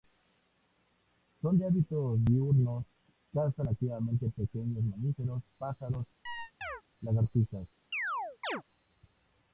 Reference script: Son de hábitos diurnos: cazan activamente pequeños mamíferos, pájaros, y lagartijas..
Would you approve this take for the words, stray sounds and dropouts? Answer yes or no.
no